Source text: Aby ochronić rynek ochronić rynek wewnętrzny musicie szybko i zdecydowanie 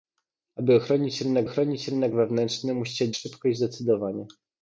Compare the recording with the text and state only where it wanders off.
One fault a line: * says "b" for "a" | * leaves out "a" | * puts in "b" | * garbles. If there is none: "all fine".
all fine